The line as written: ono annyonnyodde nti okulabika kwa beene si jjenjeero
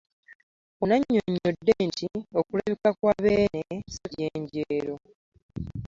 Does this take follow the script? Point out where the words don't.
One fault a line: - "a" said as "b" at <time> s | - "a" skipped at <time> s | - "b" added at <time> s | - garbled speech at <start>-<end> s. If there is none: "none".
none